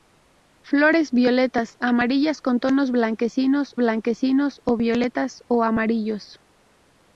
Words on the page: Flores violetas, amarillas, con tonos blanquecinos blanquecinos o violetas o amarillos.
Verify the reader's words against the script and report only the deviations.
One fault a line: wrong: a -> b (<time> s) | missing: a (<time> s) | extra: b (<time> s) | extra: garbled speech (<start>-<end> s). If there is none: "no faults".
no faults